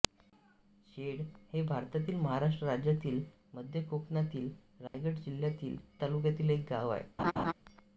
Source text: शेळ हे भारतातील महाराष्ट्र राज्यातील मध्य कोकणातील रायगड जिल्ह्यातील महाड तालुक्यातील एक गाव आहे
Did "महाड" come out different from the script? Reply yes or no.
yes